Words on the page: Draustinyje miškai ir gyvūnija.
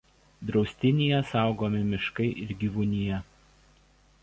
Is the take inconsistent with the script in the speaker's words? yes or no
yes